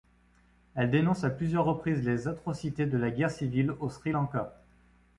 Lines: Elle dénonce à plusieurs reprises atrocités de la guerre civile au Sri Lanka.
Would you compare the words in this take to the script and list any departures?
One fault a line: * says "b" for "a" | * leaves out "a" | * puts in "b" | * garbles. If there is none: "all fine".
* puts in "les"